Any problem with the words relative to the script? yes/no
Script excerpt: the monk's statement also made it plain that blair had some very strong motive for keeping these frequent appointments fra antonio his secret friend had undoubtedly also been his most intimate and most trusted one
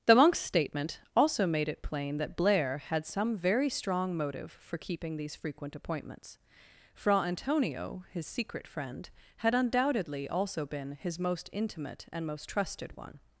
no